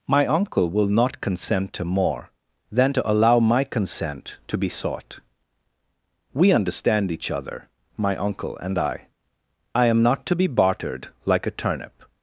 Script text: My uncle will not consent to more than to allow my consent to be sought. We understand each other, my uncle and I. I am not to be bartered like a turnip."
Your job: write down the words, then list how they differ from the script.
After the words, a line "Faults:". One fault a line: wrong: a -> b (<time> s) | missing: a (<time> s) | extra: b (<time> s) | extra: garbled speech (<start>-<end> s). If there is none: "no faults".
My uncle will not consent to more than to allow my consent to be sought. We understand each other, my uncle and I. I am not to be bartered like a turnip."
Faults:
no faults